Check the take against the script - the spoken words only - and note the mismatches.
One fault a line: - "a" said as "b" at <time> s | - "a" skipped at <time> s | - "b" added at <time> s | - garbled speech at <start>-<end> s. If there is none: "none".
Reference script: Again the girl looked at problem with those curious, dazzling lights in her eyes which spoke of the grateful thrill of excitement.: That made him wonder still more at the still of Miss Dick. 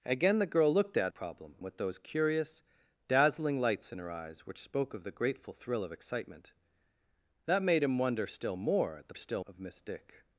none